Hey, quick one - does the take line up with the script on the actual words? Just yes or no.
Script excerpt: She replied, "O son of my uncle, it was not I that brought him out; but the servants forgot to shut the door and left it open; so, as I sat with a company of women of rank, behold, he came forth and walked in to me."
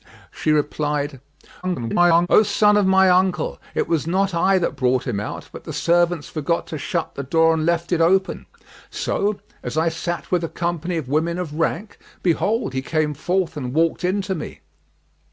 no